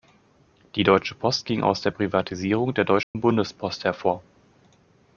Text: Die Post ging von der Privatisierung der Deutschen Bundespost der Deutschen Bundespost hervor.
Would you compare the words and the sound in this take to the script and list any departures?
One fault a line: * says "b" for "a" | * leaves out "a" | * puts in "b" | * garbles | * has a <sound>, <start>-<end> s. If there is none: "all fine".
* puts in "Deutsche"
* says "aus" for "von"
* has a dropout, 3.0-3.2 s
* leaves out "der Deutschen Bundespost"